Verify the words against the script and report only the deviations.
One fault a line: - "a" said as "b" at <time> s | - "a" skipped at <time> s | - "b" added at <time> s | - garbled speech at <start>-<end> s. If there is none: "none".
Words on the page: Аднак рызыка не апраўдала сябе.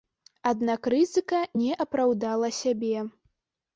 none